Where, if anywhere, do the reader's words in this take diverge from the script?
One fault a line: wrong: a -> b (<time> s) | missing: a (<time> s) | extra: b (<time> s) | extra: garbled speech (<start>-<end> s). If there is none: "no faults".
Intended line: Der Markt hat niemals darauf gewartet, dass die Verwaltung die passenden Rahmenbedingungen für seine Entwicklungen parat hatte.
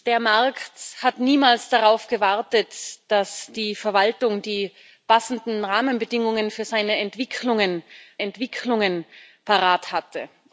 extra: Entwicklungen (8.2 s)